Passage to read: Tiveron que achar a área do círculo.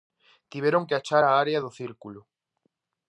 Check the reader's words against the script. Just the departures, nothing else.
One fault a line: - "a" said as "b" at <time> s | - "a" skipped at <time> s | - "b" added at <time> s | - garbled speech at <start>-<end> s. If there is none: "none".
none